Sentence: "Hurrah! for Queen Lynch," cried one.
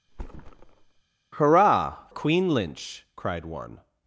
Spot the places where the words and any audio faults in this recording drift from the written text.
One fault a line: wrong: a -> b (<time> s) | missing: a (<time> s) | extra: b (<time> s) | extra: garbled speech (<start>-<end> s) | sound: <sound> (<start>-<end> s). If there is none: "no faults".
sound: thud (0.1-1.0 s)
missing: for (2.1 s)